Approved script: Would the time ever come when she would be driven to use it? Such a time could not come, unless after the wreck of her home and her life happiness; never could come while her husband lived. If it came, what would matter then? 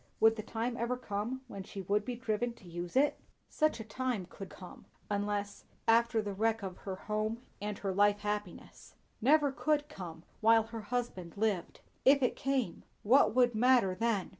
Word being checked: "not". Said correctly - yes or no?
no